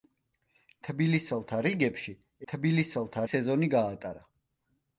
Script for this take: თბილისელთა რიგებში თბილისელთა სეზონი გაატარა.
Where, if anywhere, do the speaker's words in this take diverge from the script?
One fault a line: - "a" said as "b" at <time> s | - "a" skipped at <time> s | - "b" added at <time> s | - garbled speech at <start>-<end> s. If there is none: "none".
none